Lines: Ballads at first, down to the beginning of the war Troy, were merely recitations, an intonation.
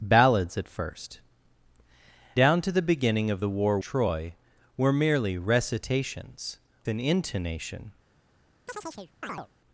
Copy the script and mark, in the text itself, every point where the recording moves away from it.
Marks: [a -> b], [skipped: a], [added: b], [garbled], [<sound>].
Ballads at first, down to the beginning of the war Troy, were merely recitations, an intonation. [chirp]